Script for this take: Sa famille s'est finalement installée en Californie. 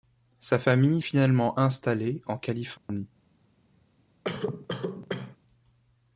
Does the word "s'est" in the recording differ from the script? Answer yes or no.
yes